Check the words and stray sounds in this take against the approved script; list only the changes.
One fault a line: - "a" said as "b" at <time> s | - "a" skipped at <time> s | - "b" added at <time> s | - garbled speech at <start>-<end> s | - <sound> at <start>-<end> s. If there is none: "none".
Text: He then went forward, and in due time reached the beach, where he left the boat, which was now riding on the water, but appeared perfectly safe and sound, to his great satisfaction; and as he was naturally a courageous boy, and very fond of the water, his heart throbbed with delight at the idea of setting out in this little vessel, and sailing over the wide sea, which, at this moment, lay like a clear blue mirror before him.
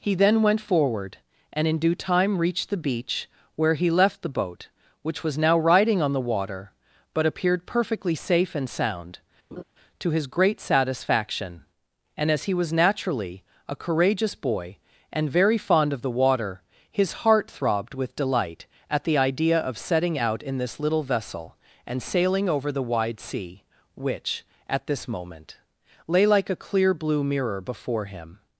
- laugh at 9.5-9.6 s